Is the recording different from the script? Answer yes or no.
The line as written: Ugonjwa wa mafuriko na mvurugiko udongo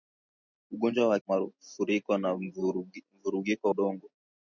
no